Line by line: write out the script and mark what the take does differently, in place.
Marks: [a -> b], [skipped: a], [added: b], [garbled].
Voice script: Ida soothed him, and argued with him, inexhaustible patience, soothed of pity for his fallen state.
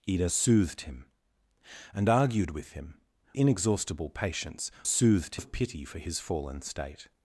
Ida soothed him, and argued with him, inexhaustible patience, soothed of pity for his fallen state.